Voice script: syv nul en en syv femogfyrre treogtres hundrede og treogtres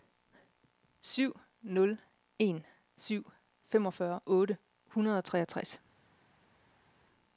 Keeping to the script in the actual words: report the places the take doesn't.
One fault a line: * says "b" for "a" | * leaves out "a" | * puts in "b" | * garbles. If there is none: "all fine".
* leaves out "en"
* says "otte" for "treogtres"